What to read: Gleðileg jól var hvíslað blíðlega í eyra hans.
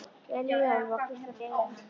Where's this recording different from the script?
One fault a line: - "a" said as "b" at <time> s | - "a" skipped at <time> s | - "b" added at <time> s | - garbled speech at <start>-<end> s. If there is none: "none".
- "blíðlega" skipped at 1.4 s